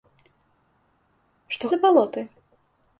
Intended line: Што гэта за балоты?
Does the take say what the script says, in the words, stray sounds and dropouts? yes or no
no